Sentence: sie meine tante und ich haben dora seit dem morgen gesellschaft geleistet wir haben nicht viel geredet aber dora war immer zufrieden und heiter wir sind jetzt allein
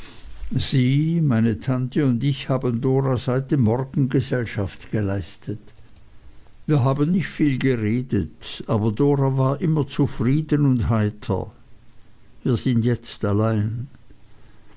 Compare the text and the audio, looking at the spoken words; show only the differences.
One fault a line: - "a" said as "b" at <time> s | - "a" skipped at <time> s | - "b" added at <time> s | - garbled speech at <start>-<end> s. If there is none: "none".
none